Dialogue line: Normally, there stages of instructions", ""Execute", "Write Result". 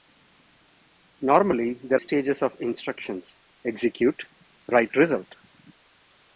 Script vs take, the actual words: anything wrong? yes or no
no